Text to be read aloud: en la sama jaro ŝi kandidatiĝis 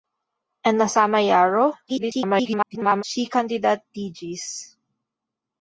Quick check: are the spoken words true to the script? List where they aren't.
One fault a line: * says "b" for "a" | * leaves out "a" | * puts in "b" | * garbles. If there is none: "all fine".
* garbles